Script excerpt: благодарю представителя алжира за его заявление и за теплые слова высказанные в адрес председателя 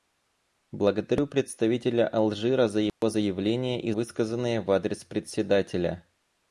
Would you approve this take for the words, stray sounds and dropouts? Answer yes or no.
no